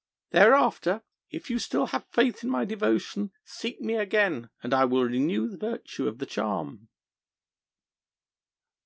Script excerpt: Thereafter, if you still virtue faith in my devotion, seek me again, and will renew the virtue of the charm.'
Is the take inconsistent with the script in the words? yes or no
yes